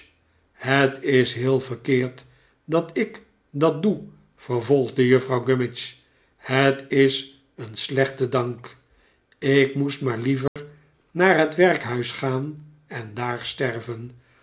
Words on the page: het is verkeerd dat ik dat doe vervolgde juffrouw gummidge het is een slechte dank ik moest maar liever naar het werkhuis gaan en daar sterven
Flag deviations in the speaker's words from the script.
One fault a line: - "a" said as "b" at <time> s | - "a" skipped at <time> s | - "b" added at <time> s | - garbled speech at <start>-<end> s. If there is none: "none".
- "heel" added at 1.3 s